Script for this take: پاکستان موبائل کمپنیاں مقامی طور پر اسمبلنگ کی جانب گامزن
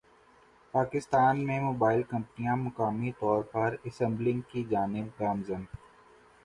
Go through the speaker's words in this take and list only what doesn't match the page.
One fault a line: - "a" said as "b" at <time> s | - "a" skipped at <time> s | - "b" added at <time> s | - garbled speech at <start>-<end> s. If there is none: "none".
- "میں" added at 1.5 s